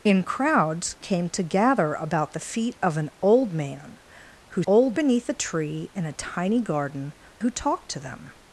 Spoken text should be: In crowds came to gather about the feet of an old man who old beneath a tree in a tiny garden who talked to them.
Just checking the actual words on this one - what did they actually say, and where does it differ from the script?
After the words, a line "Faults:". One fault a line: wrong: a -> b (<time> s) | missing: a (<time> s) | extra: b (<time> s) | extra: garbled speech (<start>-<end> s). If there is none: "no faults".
In crowds came to gather about the feet of an old man who old beneath a tree in a tiny garden who talked to them.
Faults:
no faults